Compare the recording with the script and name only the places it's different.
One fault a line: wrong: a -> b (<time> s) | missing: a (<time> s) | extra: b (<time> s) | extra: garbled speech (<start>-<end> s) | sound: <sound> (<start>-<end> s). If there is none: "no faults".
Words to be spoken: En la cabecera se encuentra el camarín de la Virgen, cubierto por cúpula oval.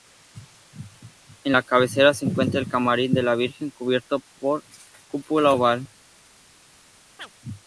sound: chirp (7.2-7.3 s)